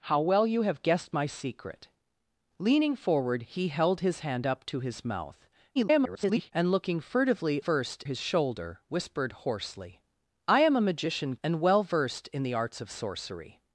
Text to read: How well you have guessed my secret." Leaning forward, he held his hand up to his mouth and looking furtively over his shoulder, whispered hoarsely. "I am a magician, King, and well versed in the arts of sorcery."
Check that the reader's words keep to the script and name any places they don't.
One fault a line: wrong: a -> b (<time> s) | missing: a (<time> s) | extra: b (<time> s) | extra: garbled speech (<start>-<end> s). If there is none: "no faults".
extra: garbled speech (5.8-6.5 s)
wrong: over -> versed (7.6 s)
missing: King (11.3 s)